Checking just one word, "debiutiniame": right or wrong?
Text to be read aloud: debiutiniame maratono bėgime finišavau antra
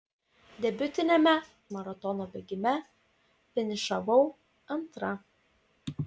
right